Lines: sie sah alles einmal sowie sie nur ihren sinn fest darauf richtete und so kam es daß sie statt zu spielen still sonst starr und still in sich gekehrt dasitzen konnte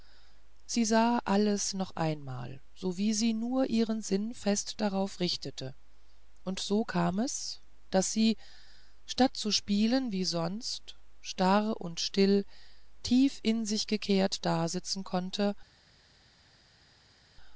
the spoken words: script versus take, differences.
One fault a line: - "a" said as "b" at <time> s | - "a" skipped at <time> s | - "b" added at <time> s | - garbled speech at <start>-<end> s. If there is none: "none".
- "noch" added at 1.8 s
- "still" said as "wie" at 10.1 s
- "tief" added at 13.0 s